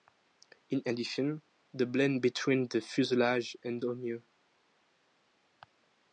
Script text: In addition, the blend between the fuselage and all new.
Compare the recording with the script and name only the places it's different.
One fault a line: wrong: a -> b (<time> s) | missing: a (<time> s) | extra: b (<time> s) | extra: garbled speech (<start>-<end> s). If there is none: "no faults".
no faults